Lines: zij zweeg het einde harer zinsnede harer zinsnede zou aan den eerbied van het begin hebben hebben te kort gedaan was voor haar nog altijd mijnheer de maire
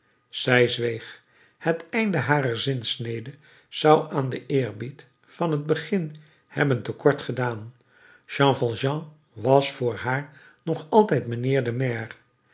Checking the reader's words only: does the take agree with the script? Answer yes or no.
no